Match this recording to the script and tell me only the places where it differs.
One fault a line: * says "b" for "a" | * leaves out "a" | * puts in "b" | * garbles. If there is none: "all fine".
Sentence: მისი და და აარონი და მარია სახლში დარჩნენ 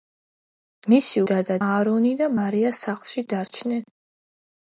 all fine